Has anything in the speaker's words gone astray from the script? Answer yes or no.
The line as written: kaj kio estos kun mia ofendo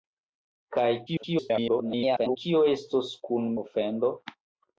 yes